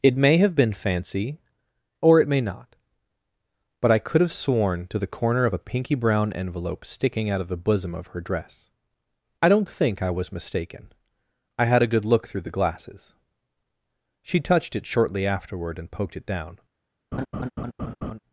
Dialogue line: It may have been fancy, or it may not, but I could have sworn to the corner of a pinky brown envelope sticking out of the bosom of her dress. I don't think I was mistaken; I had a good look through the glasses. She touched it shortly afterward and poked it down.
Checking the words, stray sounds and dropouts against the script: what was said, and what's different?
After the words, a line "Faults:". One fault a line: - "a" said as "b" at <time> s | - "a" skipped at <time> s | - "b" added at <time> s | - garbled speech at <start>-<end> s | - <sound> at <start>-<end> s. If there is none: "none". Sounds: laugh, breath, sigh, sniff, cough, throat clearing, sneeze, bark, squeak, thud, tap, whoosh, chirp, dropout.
It may have been fancy, or it may not, but I could have sworn to the corner of a pinky brown envelope sticking out of the bosom of her dress. I don't think I was mistaken; I had a good look through the glasses. She touched it shortly afterward and poked it down.
Faults:
- laugh at 17.1-18.2 s